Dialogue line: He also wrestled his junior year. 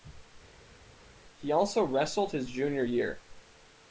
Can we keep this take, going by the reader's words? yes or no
yes